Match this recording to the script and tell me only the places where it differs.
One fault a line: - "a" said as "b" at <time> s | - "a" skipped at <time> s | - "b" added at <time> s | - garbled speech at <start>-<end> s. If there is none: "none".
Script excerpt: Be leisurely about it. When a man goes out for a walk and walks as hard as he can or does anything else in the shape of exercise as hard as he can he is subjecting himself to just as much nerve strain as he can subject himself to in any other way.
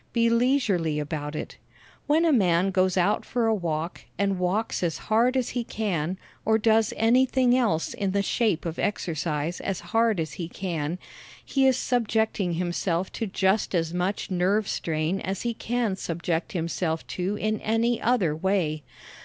none